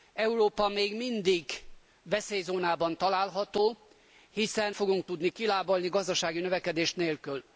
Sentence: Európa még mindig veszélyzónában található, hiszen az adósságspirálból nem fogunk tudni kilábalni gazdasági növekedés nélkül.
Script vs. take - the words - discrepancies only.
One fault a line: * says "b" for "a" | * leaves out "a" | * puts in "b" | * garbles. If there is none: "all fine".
* leaves out "az adósságspirálból nem"